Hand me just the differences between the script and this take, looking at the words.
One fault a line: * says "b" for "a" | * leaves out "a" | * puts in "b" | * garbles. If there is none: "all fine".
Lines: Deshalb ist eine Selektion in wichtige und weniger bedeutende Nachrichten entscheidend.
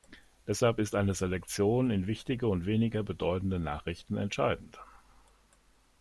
all fine